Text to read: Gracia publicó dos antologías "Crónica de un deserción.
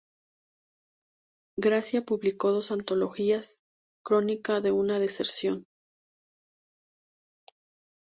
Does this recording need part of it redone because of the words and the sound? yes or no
yes